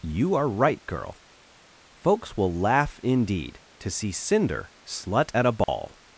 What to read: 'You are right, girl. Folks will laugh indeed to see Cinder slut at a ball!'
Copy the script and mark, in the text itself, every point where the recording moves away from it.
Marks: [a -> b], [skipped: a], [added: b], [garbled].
'You are right, girl. Folks will laugh indeed to see Cinder slut at a ball!'